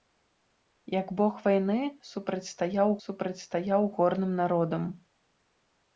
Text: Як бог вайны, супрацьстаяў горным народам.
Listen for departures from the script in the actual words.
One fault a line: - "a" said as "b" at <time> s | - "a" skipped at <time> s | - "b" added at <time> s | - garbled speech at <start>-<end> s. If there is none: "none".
- "супрацьстаяў" added at 3.1 s